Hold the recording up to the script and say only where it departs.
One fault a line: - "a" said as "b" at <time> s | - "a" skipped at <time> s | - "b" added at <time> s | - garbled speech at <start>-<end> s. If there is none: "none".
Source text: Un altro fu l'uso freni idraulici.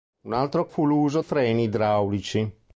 none